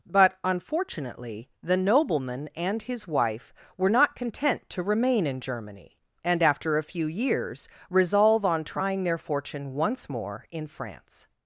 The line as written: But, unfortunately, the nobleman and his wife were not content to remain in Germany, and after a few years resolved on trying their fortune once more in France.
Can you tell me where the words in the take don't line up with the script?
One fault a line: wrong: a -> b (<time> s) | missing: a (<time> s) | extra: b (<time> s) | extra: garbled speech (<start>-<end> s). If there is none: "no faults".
wrong: resolved -> resolve (7.9 s)